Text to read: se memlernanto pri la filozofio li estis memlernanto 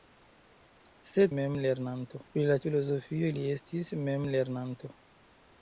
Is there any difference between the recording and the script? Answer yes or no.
no